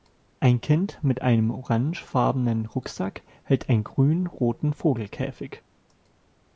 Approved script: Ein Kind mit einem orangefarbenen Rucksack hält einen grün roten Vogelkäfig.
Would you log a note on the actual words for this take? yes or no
no